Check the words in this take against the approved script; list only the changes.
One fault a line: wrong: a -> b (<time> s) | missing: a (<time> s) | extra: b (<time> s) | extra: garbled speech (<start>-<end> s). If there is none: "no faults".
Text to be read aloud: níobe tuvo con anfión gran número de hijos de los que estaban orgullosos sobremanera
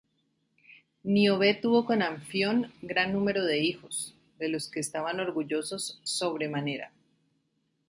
no faults